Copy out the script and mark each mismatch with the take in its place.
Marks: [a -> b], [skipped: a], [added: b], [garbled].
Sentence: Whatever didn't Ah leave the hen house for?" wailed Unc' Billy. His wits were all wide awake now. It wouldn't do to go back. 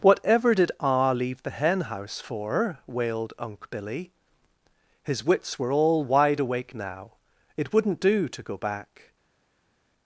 Whatever [didn't -> did] Ah leave the hen house for?" wailed Unc' Billy. His wits were all wide awake now. It wouldn't do to go back.